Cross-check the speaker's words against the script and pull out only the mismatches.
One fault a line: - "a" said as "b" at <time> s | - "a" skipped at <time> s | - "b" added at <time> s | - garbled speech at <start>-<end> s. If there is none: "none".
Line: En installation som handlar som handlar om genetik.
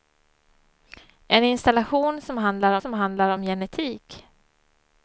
none